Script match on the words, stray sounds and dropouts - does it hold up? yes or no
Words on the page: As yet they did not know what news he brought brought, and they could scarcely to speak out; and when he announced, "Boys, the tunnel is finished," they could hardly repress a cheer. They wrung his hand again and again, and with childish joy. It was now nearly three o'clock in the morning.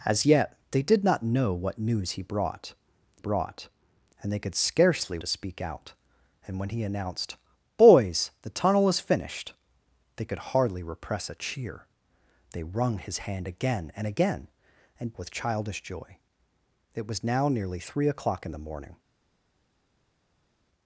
yes